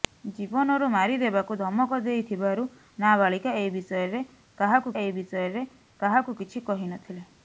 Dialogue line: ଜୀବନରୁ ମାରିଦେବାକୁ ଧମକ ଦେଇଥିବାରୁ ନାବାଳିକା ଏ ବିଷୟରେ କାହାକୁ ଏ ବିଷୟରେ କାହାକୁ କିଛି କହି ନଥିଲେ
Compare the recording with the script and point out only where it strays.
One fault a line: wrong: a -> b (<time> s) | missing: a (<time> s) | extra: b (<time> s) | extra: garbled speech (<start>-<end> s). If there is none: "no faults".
no faults